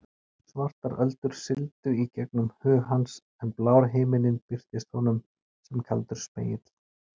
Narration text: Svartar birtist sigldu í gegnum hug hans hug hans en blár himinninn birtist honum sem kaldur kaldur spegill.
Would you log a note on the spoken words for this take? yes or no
yes